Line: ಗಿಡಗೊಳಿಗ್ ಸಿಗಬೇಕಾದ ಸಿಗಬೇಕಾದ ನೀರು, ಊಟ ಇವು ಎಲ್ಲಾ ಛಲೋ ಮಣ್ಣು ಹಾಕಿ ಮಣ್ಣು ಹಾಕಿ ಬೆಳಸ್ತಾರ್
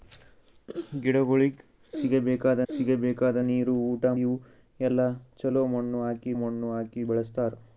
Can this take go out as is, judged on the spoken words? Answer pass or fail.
pass